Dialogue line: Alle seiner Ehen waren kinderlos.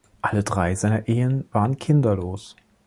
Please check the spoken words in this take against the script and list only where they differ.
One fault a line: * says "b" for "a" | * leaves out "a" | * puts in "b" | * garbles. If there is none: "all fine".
* puts in "drei"